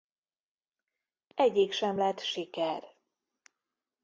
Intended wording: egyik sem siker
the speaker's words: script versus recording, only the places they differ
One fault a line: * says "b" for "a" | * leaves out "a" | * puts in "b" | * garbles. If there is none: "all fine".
* puts in "lett"